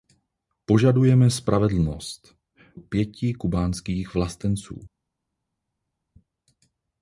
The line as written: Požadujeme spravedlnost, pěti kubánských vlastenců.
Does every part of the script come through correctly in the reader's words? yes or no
yes